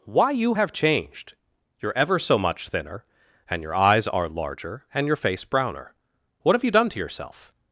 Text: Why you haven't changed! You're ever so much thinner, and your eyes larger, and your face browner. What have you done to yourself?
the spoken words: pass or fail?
fail